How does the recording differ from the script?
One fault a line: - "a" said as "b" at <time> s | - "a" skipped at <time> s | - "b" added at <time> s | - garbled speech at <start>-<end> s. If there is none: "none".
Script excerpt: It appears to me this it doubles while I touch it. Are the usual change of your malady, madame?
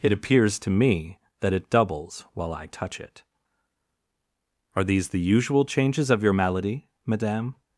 - "this" said as "that" at 1.4 s
- "these" added at 4.8 s
- "change" said as "changes" at 5.7 s